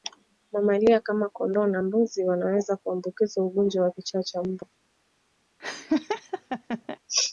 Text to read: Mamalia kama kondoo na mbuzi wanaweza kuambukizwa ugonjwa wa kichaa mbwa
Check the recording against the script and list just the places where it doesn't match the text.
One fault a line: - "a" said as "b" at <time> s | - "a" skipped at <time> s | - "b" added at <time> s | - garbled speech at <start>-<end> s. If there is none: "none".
- "cha" added at 4.2 s